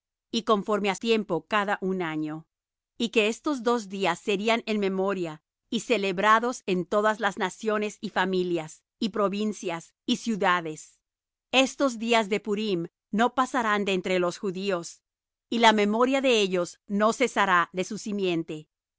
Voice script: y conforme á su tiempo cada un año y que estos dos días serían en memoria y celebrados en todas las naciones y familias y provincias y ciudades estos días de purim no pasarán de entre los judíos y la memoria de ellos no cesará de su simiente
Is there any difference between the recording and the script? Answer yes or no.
yes